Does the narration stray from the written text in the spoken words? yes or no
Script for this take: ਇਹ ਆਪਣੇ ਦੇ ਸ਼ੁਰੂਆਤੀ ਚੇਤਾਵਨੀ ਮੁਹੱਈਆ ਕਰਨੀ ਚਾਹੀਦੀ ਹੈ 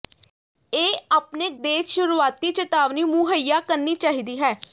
no